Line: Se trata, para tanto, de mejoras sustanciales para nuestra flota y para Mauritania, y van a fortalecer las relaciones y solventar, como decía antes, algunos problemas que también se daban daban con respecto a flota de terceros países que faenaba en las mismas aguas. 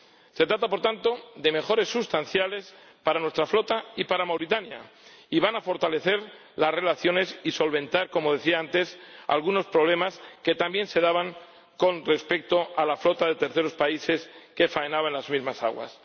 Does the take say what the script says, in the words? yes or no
no